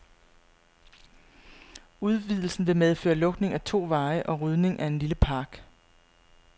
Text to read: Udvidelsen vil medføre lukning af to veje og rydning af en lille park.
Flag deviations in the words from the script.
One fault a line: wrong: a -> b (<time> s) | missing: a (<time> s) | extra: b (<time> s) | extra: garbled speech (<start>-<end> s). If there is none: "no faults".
no faults